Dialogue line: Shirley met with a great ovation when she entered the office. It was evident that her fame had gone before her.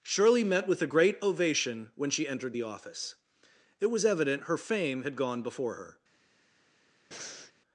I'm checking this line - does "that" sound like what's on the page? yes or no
no